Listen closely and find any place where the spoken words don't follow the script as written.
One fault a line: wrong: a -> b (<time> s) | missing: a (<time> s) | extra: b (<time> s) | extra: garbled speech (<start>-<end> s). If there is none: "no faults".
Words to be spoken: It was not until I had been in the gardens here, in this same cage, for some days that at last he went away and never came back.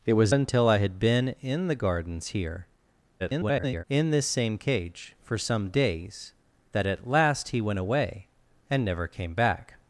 missing: not (0.3 s)
extra: garbled speech (3.2-3.8 s)